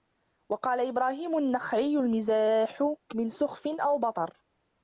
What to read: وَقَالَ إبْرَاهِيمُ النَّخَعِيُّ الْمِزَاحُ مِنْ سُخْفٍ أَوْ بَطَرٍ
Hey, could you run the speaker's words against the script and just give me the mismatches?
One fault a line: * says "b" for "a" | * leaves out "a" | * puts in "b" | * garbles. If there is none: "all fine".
all fine